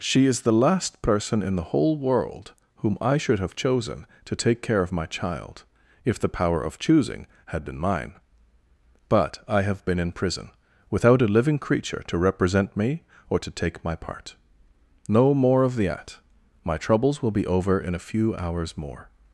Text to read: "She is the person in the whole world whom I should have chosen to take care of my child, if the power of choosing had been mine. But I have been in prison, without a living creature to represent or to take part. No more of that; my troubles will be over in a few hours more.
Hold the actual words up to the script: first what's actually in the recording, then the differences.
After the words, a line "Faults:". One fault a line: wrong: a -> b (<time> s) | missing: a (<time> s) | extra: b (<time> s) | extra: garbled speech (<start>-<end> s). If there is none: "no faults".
"She is the last person in the whole world whom I should have chosen to take care of my child, if the power of choosing had been mine. But I have been in prison, without a living creature to represent me or to take my part. No more of that; my troubles will be over in a few hours more.
Faults:
extra: last (0.5 s)
extra: me (12.8 s)
extra: my (13.8 s)